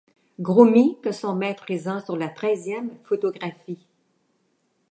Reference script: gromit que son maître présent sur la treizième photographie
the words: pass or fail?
pass